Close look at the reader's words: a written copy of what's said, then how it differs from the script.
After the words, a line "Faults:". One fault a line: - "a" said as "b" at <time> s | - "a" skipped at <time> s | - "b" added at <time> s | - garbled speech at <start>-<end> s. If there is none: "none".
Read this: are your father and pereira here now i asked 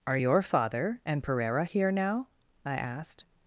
are your father and pereira here now i asked
Faults:
none